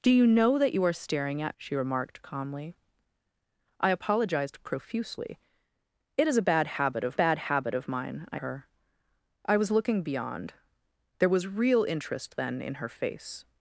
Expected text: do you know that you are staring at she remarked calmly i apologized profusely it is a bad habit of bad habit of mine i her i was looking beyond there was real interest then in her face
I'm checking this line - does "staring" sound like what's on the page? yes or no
yes